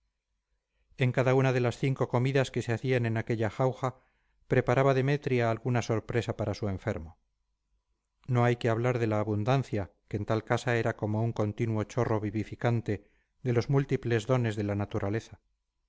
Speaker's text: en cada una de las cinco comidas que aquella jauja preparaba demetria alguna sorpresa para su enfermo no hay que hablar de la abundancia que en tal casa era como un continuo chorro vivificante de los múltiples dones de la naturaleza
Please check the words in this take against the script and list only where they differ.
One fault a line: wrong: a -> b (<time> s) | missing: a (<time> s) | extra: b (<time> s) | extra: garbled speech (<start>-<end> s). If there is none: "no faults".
extra: se hacían en (2.6 s)